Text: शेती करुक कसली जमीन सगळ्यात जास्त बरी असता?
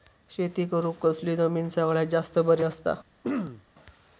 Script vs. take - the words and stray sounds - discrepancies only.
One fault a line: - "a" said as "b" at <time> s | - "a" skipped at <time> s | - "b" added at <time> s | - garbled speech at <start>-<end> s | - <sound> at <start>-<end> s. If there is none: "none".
- throat clearing at 3.2-3.7 s